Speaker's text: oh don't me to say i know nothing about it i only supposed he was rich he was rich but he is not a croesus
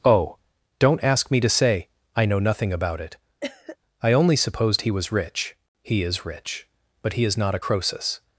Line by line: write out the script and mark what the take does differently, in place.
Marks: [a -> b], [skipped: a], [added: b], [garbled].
oh don't [added: ask] me to say i know nothing about it i only supposed he was rich he [was -> is] rich but he is not a croesus